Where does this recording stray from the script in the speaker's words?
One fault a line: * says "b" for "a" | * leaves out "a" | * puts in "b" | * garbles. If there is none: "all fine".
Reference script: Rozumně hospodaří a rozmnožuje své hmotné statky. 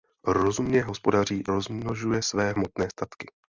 * leaves out "a"